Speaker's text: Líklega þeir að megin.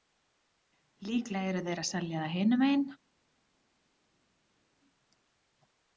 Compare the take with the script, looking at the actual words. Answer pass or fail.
fail